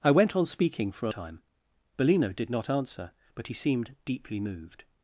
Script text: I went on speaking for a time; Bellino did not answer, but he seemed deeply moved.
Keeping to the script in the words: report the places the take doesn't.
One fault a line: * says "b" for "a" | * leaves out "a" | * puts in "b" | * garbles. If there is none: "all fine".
all fine